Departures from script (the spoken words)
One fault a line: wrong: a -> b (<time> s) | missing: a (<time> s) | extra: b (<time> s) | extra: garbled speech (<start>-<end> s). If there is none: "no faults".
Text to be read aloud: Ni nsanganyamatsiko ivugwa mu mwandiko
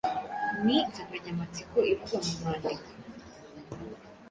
no faults